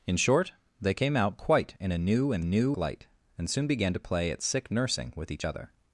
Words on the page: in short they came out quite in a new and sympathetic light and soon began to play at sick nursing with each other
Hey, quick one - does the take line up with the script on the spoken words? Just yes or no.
no